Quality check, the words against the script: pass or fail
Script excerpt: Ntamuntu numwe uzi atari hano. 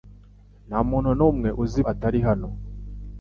pass